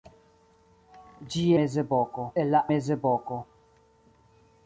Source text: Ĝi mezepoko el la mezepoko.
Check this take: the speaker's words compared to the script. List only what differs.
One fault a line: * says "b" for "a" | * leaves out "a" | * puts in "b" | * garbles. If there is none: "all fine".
all fine